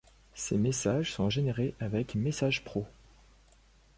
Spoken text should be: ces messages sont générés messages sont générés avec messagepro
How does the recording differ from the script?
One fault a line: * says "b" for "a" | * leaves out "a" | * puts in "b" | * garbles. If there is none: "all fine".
* leaves out "messages sont générés"